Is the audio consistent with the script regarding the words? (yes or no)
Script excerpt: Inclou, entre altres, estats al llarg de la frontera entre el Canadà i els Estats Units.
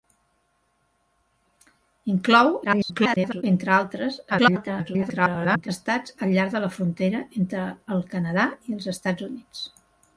no